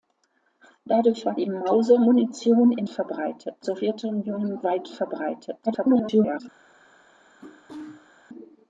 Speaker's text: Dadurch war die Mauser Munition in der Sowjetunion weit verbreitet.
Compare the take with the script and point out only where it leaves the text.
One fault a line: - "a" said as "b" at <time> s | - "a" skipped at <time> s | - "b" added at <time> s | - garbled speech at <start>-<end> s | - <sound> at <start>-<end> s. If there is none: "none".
- "der" said as "verbreitet" at 2.9 s
- garbled speech at 5.7-6.4 s
- sneeze at 7.4-8.1 s